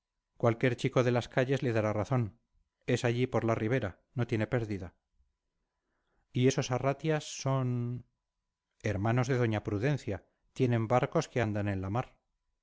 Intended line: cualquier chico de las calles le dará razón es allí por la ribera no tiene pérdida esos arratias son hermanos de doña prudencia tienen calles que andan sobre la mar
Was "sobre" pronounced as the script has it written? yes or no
no